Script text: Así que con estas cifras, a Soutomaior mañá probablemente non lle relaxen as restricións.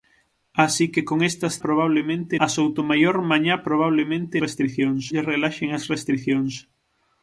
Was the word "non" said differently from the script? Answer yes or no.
yes